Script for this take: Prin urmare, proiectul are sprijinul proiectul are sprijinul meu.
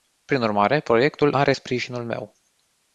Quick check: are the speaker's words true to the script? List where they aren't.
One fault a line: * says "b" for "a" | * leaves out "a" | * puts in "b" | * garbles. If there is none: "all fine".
* leaves out "proiectul are sprijinul"